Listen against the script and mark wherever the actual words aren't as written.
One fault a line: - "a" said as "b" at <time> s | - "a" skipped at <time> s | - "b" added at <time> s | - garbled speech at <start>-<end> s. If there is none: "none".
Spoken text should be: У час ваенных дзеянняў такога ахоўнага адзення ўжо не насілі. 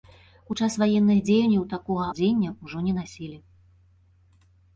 - "ахоўнага" skipped at 2.1 s